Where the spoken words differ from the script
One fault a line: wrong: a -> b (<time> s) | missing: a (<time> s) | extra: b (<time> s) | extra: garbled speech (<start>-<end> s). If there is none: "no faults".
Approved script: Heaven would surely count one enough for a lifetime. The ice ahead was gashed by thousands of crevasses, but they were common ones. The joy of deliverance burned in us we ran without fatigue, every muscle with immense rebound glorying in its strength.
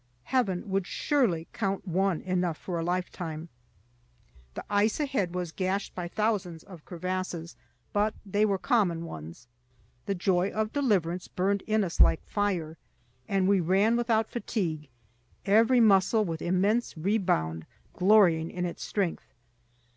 extra: like fire and (12.0 s)